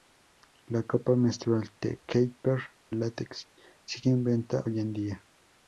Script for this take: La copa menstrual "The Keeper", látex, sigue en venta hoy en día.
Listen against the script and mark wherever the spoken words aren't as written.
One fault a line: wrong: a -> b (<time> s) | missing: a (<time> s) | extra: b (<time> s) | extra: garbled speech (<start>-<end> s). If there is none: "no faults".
no faults